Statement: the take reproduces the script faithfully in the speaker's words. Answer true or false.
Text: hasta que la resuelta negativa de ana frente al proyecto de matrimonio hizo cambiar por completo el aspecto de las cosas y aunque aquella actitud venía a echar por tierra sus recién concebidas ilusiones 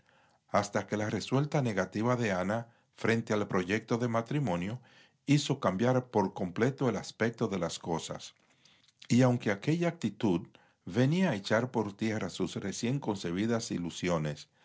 true